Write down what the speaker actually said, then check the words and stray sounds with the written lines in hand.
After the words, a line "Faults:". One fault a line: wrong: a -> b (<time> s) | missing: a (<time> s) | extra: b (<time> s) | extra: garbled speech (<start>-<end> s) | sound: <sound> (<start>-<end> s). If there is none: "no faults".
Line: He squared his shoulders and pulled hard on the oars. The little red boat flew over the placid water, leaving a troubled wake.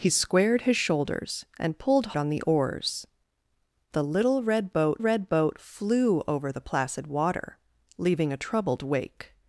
He squared his shoulders and pulled on the oars. The little red boat red boat flew over the placid water, leaving a troubled wake.
Faults:
missing: hard (2.2 s)
extra: red boat (5.0 s)